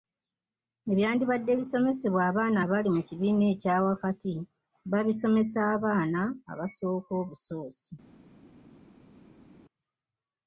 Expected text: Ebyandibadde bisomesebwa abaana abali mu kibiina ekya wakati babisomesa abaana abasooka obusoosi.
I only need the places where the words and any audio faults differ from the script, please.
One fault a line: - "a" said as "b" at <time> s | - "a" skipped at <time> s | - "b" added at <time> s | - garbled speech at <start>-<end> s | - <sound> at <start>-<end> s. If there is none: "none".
none